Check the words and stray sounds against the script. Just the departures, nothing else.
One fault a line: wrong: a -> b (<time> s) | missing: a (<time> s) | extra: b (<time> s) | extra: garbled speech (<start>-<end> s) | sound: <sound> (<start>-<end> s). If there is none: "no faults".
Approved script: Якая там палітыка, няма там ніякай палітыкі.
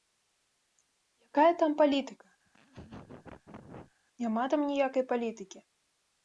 sound: laugh (2.4-3.9 s)